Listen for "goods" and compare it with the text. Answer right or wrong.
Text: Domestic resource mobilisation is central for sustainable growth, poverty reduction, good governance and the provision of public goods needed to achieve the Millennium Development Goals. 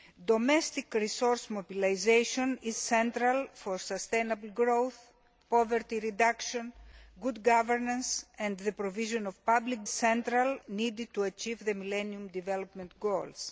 wrong